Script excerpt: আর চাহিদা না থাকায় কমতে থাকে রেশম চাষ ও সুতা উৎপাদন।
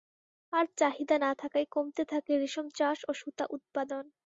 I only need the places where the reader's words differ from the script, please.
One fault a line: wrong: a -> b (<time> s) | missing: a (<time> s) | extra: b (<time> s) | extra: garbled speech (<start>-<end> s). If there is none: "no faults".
no faults